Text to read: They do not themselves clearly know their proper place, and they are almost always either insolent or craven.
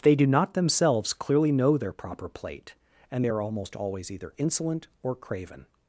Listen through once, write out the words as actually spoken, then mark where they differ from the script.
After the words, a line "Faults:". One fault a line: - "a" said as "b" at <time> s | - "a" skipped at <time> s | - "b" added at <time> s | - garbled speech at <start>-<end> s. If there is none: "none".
They do not themselves clearly know their proper plate, and they are almost always either insolent or craven.
Faults:
- "place" said as "plate" at 2.3 s